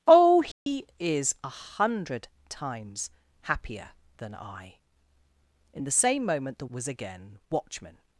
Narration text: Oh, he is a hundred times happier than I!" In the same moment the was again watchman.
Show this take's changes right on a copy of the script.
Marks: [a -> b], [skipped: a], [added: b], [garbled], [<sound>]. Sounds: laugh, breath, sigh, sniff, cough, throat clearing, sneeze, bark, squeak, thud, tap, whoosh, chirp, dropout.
Oh, he [dropout] is a hundred times happier than I!" In the same moment the was again watchman.